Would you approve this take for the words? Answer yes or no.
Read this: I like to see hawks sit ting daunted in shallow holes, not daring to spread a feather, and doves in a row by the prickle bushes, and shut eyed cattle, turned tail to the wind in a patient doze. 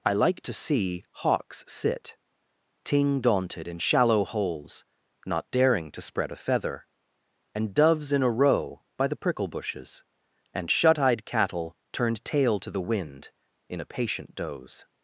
yes